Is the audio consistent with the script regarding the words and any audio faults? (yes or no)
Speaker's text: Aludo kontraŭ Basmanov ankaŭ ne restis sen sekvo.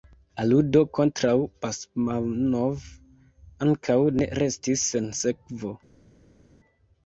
yes